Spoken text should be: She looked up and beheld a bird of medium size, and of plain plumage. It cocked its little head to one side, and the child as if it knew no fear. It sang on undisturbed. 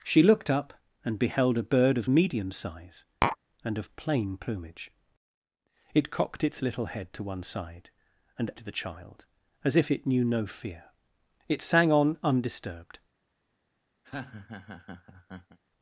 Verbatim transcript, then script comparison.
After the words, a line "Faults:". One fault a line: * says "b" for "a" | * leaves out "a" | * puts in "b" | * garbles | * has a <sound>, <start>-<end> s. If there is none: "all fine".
She looked up and beheld a bird of medium size, and of plain plumage. It cocked its little head to one side, and the child as if it knew no fear. It sang on undisturbed.
Faults:
* has a tap, 3.2-3.4 s
* has a laugh, 14.0-15.6 s